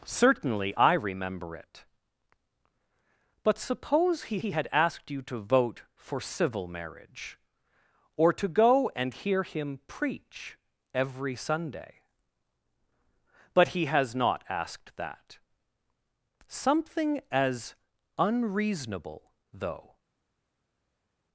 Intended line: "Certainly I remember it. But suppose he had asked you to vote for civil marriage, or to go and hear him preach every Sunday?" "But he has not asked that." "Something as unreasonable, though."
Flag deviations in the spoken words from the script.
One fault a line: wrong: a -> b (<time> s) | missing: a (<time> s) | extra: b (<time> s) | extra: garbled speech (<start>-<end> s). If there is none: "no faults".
extra: he (4.4 s)